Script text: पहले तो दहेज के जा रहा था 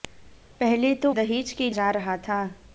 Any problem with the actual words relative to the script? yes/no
no